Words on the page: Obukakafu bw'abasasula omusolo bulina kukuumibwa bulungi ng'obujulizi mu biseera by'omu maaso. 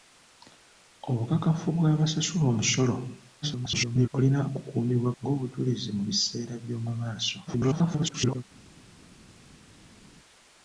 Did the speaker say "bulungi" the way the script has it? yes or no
no